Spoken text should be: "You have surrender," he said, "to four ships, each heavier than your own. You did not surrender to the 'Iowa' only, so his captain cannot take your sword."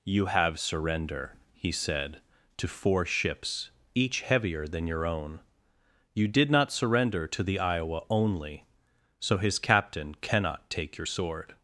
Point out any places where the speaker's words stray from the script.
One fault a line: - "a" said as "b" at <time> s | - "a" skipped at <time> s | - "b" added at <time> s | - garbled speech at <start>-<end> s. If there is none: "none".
none